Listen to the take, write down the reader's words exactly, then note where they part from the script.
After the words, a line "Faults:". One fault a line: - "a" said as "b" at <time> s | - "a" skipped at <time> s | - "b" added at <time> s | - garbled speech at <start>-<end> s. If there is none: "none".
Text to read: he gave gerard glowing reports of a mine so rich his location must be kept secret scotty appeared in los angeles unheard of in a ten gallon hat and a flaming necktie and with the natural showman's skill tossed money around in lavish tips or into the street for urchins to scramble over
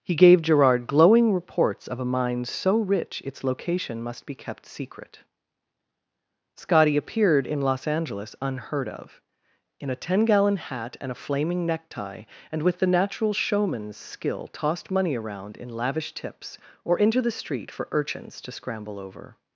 he gave gerard glowing reports of a mine so rich its location must be kept secret scotty appeared in los angeles unheard of in a ten gallon hat and a flaming necktie and with the natural showman's skill tossed money around in lavish tips or into the street for urchins to scramble over
Faults:
- "his" said as "its" at 3.2 s